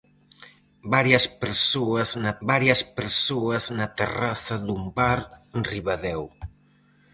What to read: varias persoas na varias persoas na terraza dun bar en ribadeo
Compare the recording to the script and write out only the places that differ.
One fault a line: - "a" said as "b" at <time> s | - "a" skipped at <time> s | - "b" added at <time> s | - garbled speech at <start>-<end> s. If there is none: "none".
none